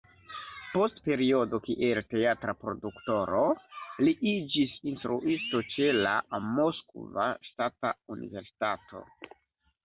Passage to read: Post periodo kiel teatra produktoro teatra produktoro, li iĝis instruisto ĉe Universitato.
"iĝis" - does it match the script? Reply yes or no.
yes